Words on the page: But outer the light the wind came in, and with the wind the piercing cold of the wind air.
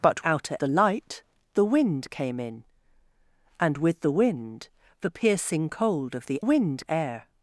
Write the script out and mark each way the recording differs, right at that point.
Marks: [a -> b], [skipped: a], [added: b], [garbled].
But outer the light the wind came in, and with the wind the piercing cold of the wind air.